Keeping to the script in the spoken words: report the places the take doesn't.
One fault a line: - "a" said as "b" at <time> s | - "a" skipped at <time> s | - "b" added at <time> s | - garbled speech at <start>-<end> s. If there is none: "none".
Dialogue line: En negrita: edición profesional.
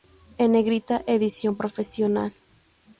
none